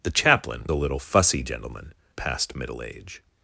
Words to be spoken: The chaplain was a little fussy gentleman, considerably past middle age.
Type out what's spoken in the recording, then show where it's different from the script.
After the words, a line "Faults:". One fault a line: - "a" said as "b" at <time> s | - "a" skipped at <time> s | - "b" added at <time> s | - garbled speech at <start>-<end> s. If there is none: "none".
The chaplain a little fussy gentleman, past middle age.
Faults:
- "was" skipped at 0.7 s
- "considerably" skipped at 1.9 s